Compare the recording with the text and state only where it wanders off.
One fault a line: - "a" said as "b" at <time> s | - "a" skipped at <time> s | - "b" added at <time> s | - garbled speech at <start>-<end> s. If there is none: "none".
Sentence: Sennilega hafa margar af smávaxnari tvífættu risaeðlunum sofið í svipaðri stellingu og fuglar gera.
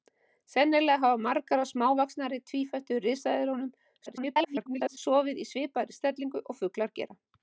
- garbled speech at 4.1-5.0 s